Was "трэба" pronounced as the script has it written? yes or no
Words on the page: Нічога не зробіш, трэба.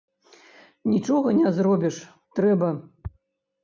yes